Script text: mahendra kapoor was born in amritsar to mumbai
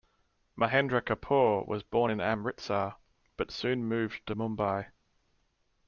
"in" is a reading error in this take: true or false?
false